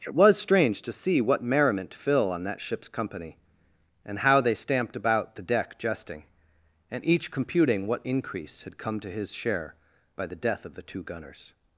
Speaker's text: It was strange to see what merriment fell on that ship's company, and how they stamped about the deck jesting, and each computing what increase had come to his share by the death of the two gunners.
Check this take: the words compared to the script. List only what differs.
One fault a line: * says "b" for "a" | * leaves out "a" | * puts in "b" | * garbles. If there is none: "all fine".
* says "fill" for "fell"